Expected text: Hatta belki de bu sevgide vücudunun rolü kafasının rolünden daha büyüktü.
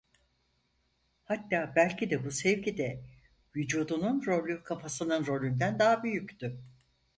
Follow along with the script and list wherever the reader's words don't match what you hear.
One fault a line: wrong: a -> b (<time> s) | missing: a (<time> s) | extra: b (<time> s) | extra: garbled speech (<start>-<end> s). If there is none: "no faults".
no faults